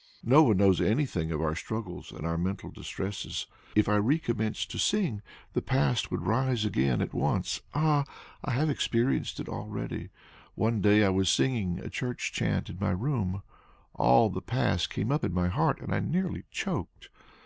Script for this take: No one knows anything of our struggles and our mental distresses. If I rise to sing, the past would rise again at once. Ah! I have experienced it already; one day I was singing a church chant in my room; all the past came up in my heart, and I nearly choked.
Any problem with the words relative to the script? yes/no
yes